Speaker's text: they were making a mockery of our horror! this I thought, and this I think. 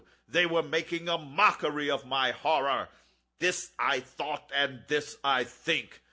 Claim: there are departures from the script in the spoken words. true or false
true